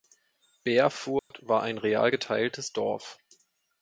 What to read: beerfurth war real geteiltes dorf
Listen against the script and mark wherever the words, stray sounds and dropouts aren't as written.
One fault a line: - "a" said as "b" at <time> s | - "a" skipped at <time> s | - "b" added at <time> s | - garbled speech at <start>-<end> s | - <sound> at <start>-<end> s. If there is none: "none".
- dropout at 1.2-1.3 s
- "ein" added at 1.6 s